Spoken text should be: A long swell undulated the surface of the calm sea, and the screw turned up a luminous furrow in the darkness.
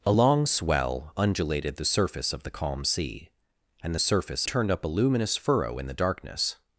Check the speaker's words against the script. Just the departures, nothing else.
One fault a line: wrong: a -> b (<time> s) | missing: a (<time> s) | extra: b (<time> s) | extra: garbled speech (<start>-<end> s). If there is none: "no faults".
wrong: screw -> surface (4.0 s)